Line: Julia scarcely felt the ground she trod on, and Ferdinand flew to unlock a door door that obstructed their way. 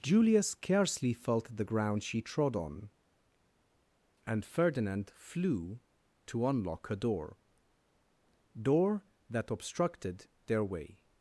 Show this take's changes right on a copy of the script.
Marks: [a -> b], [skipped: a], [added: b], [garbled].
Julia scarcely felt the ground she trod on, and Ferdinand flew to unlock a door door that obstructed their way.